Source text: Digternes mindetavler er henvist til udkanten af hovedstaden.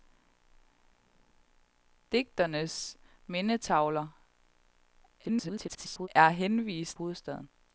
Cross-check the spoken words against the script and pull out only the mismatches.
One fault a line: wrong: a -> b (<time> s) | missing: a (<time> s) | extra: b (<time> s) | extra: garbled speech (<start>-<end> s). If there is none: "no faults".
extra: garbled speech (5.2-6.1 s)
missing: til udkanten af (7.0 s)